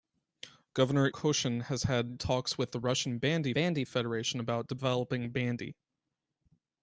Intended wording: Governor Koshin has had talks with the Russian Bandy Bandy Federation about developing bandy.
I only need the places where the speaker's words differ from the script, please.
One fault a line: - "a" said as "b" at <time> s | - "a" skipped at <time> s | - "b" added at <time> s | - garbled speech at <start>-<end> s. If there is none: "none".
none